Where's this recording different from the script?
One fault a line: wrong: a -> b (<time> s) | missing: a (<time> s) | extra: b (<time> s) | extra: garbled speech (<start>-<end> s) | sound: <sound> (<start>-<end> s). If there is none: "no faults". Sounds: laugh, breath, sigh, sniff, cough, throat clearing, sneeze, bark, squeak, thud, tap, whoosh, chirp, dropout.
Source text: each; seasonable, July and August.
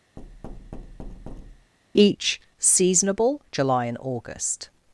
sound: thud (0.2-1.7 s)